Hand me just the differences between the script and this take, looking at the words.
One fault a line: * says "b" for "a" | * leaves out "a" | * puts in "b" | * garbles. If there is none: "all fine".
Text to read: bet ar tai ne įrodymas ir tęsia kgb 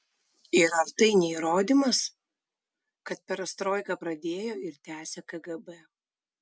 * says "ir" for "bet"
* puts in "kad perestroiką pradėjo"